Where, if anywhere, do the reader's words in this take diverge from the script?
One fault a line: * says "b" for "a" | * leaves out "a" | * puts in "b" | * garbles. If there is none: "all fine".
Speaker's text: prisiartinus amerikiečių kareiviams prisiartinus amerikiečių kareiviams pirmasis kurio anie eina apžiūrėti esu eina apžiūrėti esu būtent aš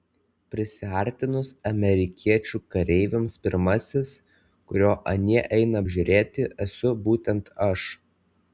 * leaves out "prisiartinus amerikiečių kareiviams"
* leaves out "eina apžiūrėti esu"